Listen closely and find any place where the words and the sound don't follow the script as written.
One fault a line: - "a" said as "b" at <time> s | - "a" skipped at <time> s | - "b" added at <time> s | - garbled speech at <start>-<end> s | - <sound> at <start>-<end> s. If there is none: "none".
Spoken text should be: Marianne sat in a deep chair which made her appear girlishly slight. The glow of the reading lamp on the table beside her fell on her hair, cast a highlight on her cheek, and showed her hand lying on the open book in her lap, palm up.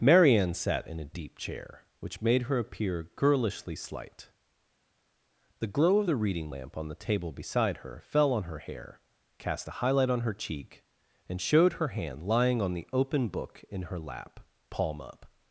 none